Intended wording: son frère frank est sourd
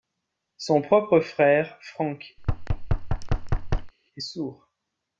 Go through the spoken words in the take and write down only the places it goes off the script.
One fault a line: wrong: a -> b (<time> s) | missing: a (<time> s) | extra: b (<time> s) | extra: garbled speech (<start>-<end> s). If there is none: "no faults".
extra: propre (0.8 s)